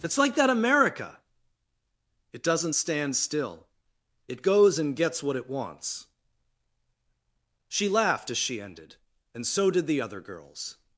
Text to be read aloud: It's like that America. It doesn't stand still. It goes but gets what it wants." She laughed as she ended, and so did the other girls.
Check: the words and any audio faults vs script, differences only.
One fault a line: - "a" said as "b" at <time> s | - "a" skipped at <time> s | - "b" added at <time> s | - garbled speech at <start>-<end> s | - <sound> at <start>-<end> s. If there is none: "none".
- "but" said as "and" at 4.8 s